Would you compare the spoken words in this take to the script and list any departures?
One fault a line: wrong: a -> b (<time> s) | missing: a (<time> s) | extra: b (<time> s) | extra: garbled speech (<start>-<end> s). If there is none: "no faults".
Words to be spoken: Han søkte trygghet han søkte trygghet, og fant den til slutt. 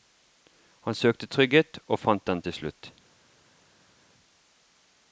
missing: han søkte trygghet (1.8 s)